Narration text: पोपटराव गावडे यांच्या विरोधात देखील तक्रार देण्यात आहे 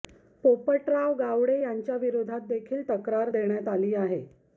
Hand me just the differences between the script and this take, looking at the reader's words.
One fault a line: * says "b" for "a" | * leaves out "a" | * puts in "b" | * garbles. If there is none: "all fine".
* puts in "आली"